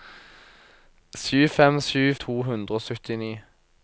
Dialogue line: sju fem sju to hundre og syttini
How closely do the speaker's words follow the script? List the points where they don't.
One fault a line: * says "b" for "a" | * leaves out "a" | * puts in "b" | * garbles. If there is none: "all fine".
all fine